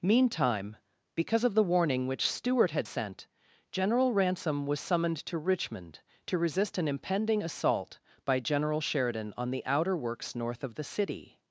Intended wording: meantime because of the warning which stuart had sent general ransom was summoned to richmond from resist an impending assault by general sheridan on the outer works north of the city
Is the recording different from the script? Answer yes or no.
yes